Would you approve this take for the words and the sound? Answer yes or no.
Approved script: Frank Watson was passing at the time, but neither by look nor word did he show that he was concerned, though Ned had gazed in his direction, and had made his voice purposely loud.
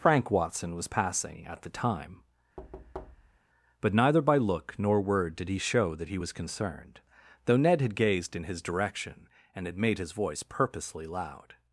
no